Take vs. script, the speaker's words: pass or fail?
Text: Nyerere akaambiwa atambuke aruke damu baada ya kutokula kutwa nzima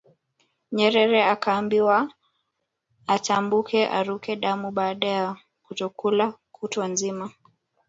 pass